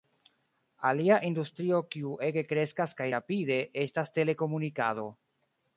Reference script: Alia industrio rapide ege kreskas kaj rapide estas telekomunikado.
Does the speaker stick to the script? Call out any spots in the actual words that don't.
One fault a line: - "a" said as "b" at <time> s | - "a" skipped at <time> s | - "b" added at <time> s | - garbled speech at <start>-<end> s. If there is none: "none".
- "rapide" said as "kiu" at 1.9 s